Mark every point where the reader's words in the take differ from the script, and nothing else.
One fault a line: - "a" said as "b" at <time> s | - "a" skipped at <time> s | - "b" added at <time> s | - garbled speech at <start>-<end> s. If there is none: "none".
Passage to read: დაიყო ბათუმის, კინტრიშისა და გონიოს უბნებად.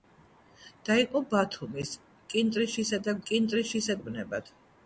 - "გონიოს" said as "კინტრიშისა" at 3.3 s